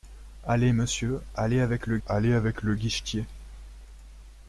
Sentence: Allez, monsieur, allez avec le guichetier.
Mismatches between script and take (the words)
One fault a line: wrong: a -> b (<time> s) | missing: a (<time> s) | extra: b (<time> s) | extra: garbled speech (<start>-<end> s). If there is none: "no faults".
extra: allez avec le (2.1 s)